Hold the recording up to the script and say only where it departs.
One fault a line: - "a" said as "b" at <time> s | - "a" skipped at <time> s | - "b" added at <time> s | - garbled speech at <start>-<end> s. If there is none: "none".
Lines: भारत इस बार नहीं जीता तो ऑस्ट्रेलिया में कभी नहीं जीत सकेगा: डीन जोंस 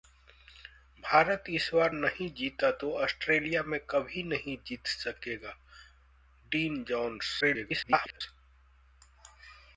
- garbled speech at 7.4-8.2 s